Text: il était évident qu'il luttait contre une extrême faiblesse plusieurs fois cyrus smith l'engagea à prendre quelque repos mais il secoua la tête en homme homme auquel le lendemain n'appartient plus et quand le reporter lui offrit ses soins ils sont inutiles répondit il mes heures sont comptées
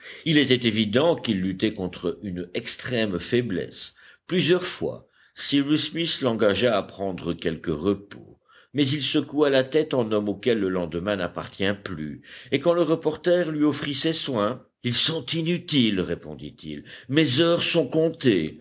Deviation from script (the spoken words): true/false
true